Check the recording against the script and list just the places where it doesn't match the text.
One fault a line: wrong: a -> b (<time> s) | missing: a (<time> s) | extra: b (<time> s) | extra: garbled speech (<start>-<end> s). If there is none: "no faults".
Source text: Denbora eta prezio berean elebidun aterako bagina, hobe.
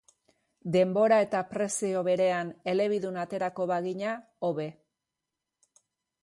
no faults